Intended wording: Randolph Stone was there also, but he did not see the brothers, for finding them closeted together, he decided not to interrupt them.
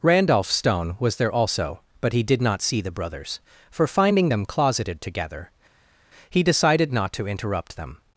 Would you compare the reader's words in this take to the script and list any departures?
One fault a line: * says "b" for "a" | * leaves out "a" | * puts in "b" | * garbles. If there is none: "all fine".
all fine